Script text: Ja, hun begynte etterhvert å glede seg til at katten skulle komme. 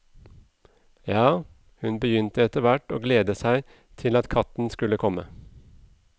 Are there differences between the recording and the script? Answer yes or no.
no